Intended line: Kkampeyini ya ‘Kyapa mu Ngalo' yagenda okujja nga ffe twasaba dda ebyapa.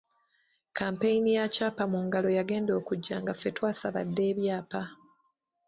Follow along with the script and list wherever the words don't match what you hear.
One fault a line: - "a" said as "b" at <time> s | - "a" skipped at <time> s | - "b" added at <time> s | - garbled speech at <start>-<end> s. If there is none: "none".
none